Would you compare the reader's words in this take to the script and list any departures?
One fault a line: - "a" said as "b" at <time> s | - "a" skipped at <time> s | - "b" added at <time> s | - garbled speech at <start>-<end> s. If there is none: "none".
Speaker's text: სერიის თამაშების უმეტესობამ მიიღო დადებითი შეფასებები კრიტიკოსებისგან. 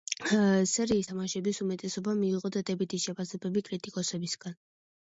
none